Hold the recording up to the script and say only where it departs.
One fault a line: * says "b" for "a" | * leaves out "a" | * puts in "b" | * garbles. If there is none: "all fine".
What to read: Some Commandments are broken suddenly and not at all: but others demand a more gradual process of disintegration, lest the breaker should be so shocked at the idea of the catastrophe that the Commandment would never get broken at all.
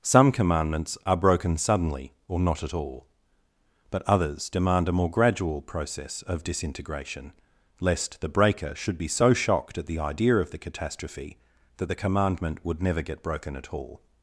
* says "or" for "and"